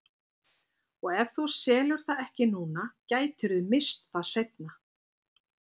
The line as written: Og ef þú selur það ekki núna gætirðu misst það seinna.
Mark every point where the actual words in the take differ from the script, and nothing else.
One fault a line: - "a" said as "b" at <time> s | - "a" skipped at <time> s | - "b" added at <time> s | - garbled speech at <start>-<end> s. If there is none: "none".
none